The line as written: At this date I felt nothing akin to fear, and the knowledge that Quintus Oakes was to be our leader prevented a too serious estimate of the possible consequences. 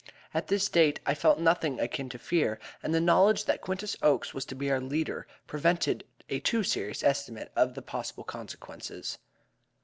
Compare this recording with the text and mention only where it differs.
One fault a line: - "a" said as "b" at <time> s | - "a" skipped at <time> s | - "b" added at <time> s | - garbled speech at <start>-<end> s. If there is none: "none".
none